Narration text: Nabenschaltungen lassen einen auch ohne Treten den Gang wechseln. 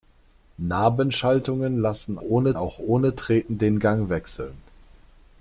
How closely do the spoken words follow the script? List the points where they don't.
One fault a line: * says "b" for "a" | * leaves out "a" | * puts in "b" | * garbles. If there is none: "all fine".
* says "ohne" for "einen"